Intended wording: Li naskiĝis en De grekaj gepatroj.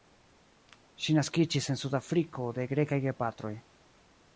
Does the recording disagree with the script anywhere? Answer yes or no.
yes